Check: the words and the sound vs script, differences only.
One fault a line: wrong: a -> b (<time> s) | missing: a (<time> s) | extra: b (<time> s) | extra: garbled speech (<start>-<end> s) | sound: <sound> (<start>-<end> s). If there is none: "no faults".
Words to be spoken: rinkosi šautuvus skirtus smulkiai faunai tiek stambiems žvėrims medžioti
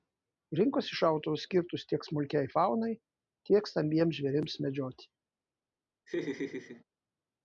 extra: tiek (1.9 s)
sound: laugh (6.1-6.8 s)